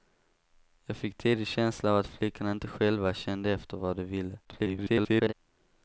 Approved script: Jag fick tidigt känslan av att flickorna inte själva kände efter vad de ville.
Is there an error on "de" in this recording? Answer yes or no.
no